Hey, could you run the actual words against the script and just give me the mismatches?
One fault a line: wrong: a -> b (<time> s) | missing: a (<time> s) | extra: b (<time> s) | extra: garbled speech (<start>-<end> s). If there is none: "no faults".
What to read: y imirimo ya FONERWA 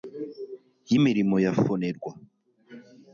no faults